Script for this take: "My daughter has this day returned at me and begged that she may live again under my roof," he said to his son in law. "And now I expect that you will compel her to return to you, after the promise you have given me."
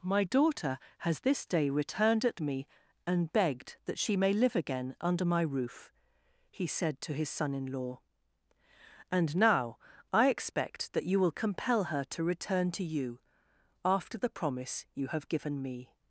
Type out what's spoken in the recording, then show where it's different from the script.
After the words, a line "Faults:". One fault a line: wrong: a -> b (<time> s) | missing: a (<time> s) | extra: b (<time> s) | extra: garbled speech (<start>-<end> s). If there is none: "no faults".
"My daughter has this day returned at me and begged that she may live again under my roof," he said to his son in law. "And now I expect that you will compel her to return to you, after the promise you have given me."
Faults:
no faults